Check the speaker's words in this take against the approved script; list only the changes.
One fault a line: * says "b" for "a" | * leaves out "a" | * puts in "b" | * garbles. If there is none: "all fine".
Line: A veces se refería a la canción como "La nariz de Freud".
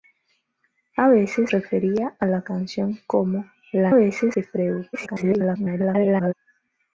* leaves out "se"
* says "veces" for "nariz"
* garbles